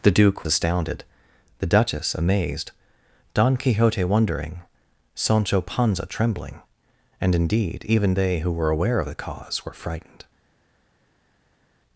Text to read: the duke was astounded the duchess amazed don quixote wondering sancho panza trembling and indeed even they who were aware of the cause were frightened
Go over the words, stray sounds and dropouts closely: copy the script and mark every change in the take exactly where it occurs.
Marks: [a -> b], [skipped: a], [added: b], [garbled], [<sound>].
the duke [skipped: was] astounded the duchess amazed don quixote wondering sancho panza trembling and indeed even they who were aware of the cause were frightened